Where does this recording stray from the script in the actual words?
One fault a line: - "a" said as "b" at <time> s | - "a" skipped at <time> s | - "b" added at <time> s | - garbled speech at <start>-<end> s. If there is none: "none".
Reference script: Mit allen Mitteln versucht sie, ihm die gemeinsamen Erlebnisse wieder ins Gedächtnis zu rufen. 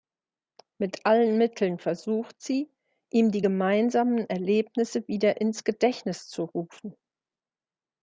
none